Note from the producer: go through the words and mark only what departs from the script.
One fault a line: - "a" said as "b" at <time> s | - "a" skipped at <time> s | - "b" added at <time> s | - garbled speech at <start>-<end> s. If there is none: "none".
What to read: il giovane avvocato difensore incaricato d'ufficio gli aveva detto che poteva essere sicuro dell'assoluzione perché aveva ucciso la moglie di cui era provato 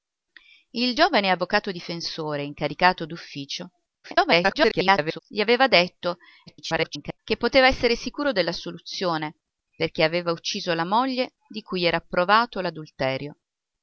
- garbled speech at 4.0-5.2 s
- garbled speech at 6.5-7.2 s